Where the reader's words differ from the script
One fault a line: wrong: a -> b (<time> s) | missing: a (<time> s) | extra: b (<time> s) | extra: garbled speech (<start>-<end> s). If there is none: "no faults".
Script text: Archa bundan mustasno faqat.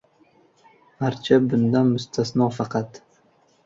no faults